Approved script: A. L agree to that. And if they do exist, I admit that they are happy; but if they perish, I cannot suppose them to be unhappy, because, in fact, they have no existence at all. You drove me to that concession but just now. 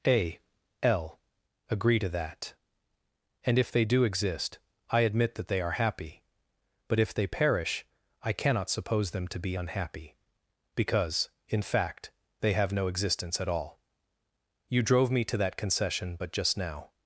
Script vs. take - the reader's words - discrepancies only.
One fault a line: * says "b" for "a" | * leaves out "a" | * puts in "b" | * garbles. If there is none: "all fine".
all fine